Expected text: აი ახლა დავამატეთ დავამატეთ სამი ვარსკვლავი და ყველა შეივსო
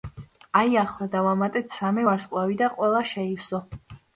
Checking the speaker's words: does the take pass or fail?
fail